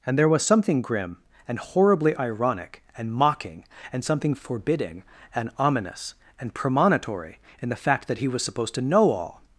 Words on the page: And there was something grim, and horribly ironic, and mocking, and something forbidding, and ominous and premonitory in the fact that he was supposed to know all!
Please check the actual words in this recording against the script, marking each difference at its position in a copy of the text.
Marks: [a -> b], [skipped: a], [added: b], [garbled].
And there was something grim, and horribly ironic, and mocking, and something forbidding, and ominous and premonitory in the fact that he was supposed to know all!